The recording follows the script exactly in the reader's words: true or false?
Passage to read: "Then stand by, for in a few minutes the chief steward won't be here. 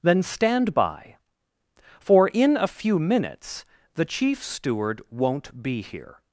true